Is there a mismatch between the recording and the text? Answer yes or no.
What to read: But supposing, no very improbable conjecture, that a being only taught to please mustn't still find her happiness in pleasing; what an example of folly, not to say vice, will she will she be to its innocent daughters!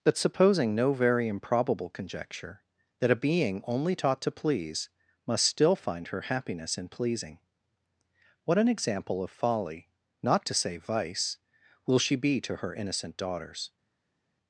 yes